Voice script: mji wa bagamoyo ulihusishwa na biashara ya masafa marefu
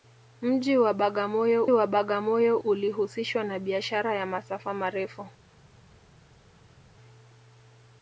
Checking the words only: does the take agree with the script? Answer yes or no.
no